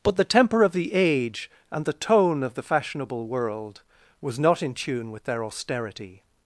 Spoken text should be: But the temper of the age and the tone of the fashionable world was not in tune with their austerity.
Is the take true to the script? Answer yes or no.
yes